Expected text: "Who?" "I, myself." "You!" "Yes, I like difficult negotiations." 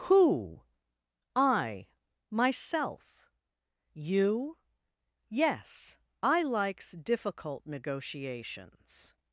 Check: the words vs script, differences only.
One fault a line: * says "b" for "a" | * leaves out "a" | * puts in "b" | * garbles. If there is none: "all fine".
* says "likes" for "like"